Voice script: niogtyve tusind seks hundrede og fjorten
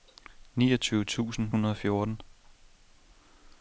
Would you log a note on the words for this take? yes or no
yes